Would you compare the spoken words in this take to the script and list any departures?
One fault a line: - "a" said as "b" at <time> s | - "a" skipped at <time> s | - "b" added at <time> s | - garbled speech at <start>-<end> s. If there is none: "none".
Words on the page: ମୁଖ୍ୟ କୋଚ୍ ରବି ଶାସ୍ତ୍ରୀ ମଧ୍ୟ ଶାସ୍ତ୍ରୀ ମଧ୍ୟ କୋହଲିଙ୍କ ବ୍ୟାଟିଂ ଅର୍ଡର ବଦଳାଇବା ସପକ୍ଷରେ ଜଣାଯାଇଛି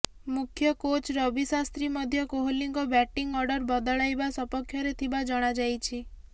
- "ଶାସ୍ତ୍ରୀ ମଧ୍ୟ" skipped at 2.2 s
- "ଥିବା" added at 5.0 s